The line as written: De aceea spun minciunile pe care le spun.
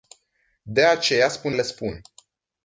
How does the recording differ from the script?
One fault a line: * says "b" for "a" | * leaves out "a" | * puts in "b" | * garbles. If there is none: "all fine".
* leaves out "minciunile pe care"